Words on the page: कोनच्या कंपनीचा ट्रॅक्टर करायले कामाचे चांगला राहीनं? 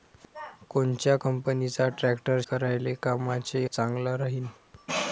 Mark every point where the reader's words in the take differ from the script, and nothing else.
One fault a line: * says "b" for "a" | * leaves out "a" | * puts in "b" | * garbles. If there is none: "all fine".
all fine